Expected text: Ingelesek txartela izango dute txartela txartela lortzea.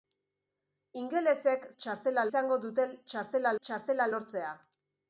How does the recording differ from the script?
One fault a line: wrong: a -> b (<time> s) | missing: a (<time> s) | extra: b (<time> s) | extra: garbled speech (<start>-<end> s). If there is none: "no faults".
no faults